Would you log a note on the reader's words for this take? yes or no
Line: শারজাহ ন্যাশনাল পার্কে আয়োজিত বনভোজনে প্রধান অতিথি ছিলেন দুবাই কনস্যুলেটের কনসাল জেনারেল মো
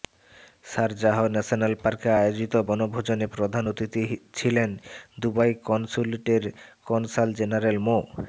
no